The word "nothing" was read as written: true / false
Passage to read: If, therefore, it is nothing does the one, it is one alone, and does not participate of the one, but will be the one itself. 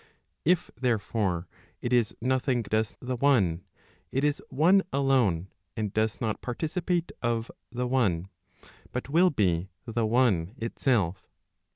true